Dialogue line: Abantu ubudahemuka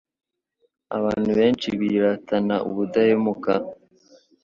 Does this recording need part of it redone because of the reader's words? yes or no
yes